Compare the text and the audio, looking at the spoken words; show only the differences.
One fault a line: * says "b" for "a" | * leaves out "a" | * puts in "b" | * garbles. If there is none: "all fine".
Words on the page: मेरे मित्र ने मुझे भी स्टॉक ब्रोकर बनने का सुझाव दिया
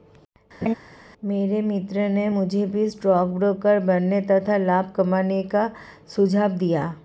* puts in "तथा लाभ कमाने"